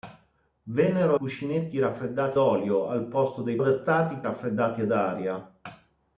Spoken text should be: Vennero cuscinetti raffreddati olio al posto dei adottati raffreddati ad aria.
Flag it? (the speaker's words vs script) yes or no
no